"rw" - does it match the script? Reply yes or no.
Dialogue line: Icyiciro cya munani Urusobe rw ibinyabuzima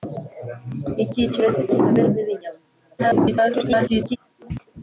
yes